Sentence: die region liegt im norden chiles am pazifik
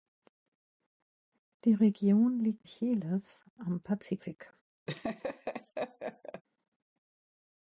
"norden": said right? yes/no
no